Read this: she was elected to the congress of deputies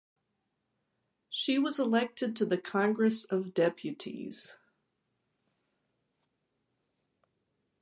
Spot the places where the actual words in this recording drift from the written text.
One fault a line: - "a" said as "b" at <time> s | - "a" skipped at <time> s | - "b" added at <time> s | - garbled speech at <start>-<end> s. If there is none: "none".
none